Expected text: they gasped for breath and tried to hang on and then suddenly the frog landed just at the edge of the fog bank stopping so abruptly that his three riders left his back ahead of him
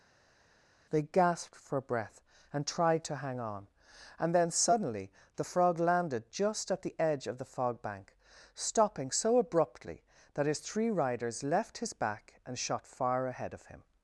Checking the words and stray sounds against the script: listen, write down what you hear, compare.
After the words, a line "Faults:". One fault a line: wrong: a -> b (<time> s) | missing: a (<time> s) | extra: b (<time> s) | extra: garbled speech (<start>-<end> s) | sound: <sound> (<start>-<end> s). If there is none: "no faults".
they gasped for breath and tried to hang on and then suddenly the frog landed just at the edge of the fog bank stopping so abruptly that his three riders left his back and shot far ahead of him
Faults:
extra: and shot far (12.4 s)